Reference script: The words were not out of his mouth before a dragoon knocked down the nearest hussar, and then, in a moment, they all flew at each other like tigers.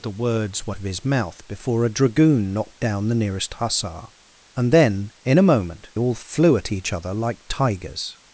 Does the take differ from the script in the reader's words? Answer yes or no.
yes